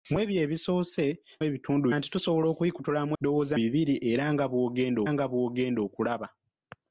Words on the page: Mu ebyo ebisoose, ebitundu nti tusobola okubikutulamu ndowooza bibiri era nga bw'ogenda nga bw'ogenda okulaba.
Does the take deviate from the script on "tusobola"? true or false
false